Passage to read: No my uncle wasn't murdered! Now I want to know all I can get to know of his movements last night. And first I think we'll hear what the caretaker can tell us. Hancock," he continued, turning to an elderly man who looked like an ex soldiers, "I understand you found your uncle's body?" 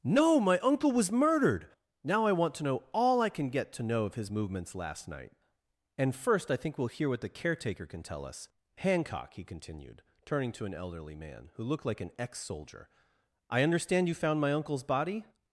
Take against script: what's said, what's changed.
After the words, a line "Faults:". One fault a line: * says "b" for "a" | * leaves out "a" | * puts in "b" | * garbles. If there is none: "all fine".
No my uncle was murdered! Now I want to know all I can get to know of his movements last night. And first I think we'll hear what the caretaker can tell us. Hancock," he continued, turning to an elderly man who looked like an ex soldier, "I understand you found my uncle's body?"
Faults:
* says "was" for "wasn't"
* says "soldier" for "soldiers"
* says "my" for "your"